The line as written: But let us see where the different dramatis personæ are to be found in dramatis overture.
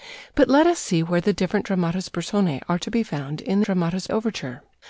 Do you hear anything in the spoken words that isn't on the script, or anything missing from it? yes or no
no